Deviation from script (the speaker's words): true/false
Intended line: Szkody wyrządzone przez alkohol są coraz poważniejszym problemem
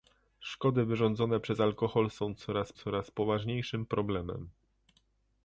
true